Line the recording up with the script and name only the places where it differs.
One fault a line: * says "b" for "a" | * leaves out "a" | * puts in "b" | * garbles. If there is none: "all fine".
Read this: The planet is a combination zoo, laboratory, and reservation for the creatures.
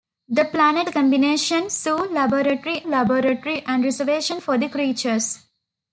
* leaves out "is"
* puts in "laboratory"